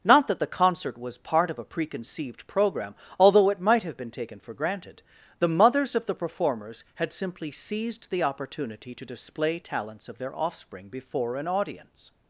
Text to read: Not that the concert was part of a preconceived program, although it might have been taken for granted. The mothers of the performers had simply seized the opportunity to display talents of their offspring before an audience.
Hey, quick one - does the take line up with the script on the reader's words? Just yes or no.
yes